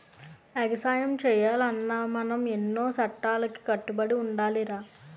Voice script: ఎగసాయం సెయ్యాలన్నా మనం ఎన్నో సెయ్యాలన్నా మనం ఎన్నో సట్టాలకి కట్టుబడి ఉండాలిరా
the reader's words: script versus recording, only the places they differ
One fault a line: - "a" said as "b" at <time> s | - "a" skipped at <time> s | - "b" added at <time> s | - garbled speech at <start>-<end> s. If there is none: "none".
- "సెయ్యాలన్నా మనం ఎన్నో" skipped at 2.9 s